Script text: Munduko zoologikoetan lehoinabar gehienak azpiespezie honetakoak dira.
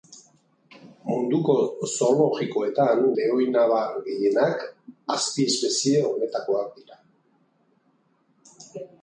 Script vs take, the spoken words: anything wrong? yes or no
no